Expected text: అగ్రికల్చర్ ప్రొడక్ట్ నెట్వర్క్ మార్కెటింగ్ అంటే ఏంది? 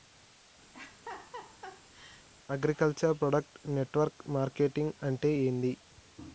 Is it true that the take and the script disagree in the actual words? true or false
false